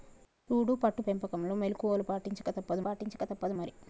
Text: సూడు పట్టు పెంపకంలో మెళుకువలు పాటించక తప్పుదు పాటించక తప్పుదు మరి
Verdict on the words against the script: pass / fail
pass